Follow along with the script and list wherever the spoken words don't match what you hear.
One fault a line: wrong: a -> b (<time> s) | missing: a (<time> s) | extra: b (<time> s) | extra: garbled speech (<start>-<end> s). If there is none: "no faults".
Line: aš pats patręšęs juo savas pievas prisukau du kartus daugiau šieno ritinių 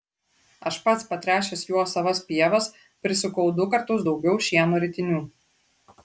no faults